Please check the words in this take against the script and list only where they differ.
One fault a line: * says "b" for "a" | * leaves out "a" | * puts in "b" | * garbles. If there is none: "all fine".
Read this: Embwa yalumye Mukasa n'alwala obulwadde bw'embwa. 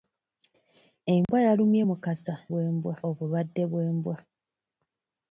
* says "bw'embwa" for "n'alwala"